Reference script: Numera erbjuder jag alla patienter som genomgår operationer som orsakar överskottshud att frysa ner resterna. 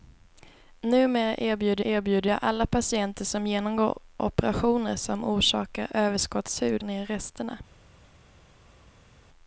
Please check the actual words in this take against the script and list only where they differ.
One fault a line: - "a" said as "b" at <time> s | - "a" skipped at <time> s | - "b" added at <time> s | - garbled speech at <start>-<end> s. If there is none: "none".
- "erbjuder" added at 1.8 s
- "att frysa" skipped at 6.8 s